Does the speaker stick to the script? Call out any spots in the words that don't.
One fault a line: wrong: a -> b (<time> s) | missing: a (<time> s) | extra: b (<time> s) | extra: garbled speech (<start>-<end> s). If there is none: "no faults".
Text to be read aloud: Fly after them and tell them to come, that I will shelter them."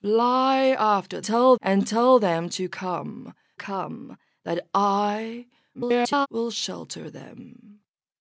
wrong: them -> tell (1.2 s)
extra: come (3.6 s)
extra: garbled speech (5.7-6.3 s)